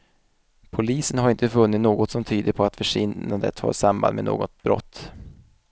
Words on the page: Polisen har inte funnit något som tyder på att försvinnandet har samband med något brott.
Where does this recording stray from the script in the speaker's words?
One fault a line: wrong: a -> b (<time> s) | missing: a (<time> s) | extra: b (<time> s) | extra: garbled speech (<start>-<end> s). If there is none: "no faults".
no faults